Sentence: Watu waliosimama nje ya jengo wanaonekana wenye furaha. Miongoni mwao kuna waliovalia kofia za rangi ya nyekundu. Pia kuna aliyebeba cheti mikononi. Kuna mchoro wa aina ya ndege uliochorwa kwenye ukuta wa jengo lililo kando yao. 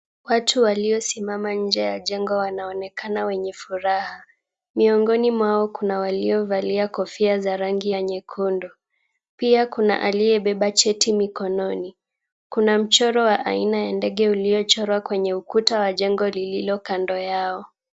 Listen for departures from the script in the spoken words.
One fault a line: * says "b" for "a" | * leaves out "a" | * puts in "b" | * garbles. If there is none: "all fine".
all fine